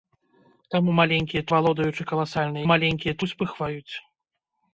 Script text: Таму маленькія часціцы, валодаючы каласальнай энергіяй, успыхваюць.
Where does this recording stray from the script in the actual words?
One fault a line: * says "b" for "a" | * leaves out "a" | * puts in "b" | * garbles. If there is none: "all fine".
* leaves out "часціцы"
* says "маленькія" for "энергіяй"